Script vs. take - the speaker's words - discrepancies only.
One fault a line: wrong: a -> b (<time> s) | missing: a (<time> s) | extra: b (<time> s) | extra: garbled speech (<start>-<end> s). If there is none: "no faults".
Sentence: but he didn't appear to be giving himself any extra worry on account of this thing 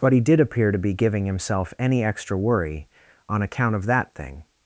wrong: didn't -> did (0.2 s)
wrong: this -> that (3.9 s)